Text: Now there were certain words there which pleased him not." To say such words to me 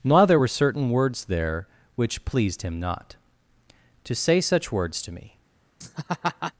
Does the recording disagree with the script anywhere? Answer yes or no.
no